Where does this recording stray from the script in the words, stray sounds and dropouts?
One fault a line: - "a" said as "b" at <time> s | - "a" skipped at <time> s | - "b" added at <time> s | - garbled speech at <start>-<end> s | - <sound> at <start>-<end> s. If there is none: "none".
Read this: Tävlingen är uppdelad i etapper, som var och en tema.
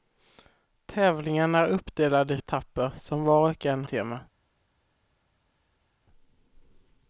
none